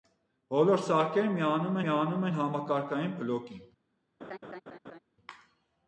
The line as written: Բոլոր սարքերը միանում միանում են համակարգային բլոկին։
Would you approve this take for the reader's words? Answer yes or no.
yes